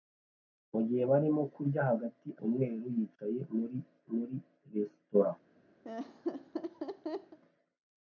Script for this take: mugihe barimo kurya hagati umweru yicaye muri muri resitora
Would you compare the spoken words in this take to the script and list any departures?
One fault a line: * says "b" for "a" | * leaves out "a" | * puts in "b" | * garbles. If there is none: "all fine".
all fine